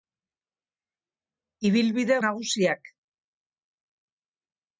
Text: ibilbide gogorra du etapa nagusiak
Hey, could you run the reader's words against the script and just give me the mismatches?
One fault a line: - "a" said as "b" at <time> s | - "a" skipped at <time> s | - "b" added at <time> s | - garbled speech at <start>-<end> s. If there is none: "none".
- "gogorra du etapa" skipped at 2.2 s